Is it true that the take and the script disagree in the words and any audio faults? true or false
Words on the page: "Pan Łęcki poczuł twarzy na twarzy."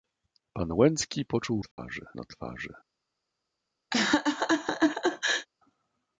true